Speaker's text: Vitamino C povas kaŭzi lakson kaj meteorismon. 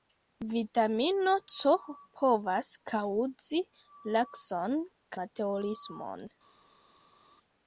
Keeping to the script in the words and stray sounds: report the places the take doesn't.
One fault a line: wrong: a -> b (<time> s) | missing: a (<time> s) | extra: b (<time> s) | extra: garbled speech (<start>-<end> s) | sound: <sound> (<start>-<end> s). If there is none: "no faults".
missing: kaj (4.8 s)